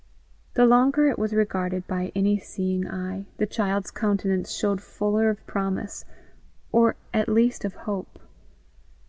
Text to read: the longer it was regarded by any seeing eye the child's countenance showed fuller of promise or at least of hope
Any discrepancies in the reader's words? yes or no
no